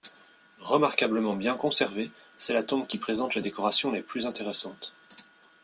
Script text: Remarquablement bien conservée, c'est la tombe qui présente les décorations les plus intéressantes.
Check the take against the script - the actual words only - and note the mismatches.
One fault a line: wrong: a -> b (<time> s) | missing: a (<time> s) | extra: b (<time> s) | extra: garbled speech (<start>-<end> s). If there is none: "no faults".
no faults